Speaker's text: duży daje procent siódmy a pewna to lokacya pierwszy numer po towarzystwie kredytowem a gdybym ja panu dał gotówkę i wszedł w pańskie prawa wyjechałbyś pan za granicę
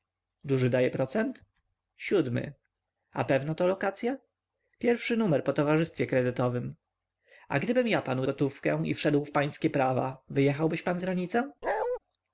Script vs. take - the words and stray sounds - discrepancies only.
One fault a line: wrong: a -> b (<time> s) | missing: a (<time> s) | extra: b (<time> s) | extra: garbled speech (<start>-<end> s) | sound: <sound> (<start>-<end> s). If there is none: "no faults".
missing: dał (8.2 s)
missing: za (11.0 s)
sound: bark (11.6-12.0 s)